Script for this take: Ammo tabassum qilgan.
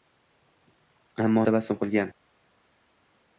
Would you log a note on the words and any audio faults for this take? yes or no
no